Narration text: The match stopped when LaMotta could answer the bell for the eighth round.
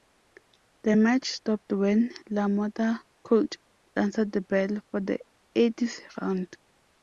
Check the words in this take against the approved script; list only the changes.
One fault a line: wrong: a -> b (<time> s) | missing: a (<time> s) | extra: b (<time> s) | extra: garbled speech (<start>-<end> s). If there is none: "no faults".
no faults